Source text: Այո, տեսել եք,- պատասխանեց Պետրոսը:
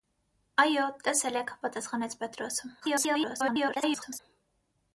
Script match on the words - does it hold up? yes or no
no